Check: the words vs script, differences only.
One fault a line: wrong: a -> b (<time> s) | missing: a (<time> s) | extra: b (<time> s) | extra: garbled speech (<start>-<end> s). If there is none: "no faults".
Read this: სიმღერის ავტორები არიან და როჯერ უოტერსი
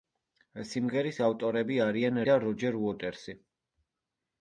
no faults